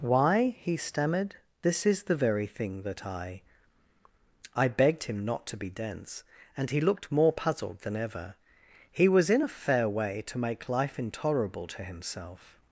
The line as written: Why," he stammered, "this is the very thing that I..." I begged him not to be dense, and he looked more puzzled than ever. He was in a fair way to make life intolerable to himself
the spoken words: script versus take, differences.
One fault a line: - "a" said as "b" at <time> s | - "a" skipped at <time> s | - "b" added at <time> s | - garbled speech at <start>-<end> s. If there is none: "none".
none